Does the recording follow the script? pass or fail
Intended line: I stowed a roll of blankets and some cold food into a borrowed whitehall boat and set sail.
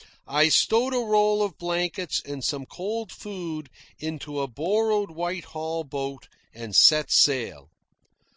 pass